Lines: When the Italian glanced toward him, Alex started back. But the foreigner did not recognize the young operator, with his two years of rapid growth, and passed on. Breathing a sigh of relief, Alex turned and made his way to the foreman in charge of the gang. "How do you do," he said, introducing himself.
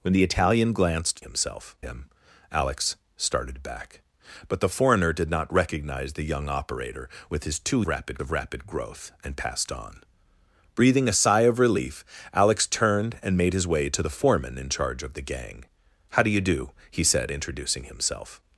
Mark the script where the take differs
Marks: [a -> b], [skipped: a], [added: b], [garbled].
When the Italian glanced [toward -> himself] him, Alex started back. But the foreigner did not recognize the young operator, with his two [years -> rapid] of rapid growth, and passed on. Breathing a sigh of relief, Alex turned and made his way to the foreman in charge of the gang. "How do you do," he said, introducing himself.